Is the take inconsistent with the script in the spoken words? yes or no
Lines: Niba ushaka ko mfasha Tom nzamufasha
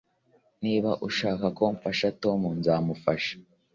no